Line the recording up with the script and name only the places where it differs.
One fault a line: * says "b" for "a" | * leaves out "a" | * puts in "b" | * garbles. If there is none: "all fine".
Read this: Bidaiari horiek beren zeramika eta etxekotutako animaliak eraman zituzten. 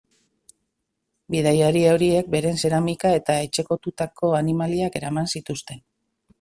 all fine